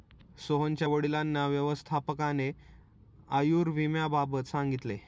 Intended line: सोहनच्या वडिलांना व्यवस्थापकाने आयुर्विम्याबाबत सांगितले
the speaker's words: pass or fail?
pass